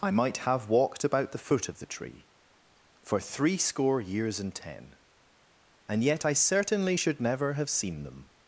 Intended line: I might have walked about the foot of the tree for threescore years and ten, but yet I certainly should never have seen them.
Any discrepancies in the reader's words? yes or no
yes